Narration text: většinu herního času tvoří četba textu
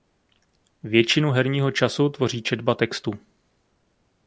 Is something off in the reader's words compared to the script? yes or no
no